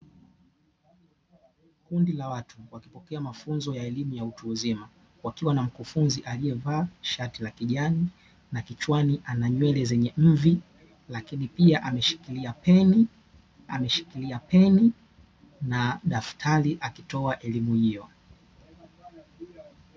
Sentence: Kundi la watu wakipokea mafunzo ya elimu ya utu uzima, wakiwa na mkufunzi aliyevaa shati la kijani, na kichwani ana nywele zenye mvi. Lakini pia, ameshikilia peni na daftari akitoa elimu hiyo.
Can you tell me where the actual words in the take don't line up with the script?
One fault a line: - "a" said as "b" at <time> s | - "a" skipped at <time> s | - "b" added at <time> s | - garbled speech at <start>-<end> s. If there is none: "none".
- "ameshikilia peni" added at 13.7 s